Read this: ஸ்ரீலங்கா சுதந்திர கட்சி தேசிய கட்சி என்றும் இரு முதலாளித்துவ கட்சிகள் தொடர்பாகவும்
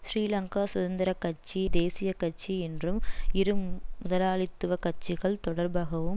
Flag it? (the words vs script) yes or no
no